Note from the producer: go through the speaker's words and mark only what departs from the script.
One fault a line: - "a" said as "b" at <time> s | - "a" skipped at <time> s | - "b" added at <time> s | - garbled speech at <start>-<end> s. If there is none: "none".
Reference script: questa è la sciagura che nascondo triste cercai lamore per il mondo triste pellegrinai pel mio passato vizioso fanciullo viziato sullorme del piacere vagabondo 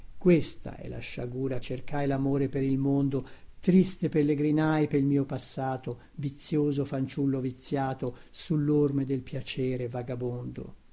- "che nascondo triste" skipped at 1.6 s